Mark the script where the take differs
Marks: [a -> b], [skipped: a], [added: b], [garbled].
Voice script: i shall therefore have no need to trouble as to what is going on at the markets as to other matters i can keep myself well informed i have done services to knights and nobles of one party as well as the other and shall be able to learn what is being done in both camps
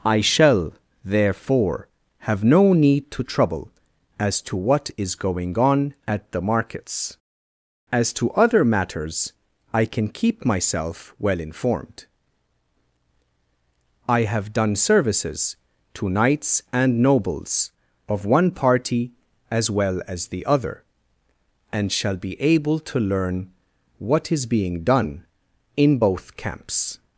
i shall therefore have no need to trouble as to what is going on at the markets as to other matters i can keep myself well informed i have done services to knights and nobles of one party as well as the other and shall be able to learn what is being done in both camps